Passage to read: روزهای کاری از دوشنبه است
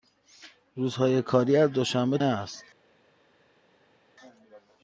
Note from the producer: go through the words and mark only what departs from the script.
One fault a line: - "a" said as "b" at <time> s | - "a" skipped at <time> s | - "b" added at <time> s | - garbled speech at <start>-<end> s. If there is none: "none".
none